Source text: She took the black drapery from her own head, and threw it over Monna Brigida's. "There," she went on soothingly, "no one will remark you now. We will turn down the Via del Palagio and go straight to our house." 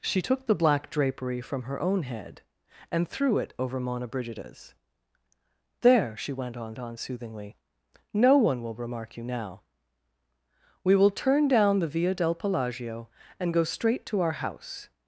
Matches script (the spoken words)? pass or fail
fail